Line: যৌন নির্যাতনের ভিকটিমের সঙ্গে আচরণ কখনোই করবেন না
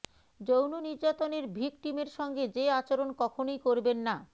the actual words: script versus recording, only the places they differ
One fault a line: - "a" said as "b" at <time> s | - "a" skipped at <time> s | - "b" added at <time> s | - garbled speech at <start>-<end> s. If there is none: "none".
- "যে" added at 2.5 s